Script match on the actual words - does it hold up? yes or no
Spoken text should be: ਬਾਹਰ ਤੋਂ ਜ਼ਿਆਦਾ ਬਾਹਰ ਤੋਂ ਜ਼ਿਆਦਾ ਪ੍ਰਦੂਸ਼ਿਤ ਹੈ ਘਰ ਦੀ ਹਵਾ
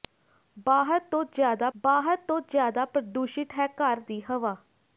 yes